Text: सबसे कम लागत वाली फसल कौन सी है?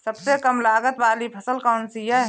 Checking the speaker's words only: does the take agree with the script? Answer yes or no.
yes